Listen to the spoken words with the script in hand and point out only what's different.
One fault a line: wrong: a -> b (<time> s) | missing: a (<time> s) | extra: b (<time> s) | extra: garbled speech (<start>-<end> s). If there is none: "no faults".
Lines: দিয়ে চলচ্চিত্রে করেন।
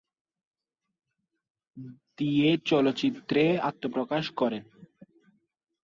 extra: আত্মপ্রকাশ (3.7 s)